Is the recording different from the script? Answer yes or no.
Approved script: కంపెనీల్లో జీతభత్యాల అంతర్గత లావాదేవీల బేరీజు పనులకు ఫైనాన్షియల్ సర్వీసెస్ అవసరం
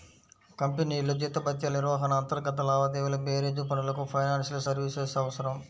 yes